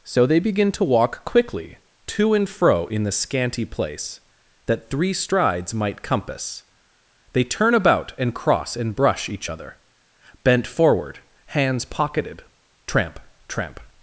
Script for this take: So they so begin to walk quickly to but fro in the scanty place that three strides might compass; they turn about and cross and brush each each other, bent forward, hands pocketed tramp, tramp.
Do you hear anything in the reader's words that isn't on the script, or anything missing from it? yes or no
yes